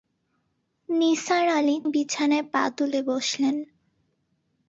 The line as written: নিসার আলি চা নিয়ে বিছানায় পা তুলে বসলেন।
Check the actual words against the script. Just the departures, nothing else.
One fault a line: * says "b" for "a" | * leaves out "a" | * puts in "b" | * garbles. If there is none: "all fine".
* leaves out "চা নিয়ে"